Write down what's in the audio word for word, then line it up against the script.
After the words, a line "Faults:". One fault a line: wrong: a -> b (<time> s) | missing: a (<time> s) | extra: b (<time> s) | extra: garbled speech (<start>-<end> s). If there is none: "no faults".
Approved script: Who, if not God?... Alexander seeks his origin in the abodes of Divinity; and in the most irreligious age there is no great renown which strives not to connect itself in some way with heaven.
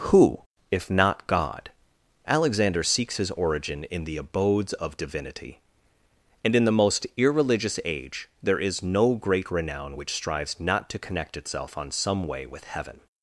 Who, if not God?... Alexander seeks his origin in the abodes of Divinity; and in the most irreligious age there is no great renown which strives not to connect itself on some way with heaven.
Faults:
wrong: in -> on (11.8 s)